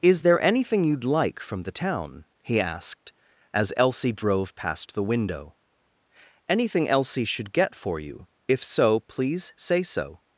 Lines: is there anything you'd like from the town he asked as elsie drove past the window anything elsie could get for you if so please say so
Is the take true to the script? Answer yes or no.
no